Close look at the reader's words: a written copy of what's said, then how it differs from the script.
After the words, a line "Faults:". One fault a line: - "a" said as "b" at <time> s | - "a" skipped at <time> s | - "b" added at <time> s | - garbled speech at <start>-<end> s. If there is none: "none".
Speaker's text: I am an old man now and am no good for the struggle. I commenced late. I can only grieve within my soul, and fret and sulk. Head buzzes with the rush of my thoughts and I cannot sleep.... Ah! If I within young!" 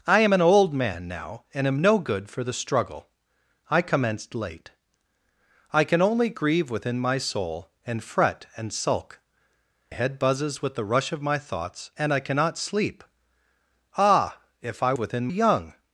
I am an old man now and am no good for the struggle. I commenced late. I can only grieve within my soul, and fret and sulk. Head buzzes with the rush of my thoughts and I cannot sleep.... Ah! If I within young!"
Faults:
none